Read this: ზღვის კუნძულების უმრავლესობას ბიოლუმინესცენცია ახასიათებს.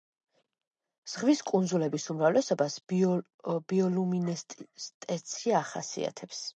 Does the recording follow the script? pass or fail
pass